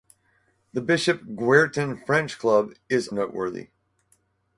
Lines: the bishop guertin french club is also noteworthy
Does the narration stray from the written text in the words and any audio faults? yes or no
yes